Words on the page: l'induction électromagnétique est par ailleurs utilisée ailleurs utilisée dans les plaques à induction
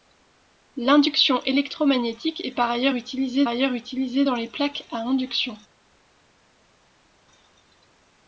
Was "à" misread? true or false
false